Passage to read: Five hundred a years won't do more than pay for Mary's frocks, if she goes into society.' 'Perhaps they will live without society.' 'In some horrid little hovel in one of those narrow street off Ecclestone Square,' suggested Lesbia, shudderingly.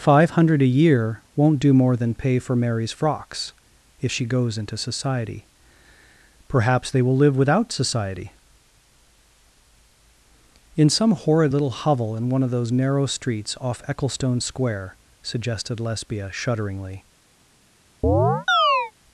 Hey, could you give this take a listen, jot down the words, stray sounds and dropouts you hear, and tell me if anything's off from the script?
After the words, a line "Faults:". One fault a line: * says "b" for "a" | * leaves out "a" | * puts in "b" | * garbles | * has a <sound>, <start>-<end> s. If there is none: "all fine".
Five hundred a year won't do more than pay for Mary's frocks, if she goes into society.' 'Perhaps they will live without society.' 'In some horrid little hovel in one of those narrow streets off Ecclestone Square,' suggested Lesbia, shudderingly.
Faults:
* says "year" for "years"
* says "streets" for "street"
* has a chirp, 18.0-18.9 s